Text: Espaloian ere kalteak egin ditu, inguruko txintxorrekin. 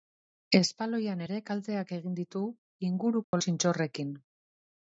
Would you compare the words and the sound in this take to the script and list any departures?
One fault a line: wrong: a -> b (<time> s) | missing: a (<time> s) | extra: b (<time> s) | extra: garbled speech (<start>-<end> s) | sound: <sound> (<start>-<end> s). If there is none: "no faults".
sound: dropout (3.2-3.3 s)